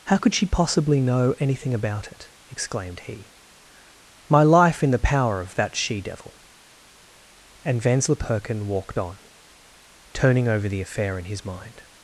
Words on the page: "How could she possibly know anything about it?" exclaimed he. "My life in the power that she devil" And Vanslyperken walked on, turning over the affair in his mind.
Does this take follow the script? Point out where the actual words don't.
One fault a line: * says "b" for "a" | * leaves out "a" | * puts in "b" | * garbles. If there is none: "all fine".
* puts in "of"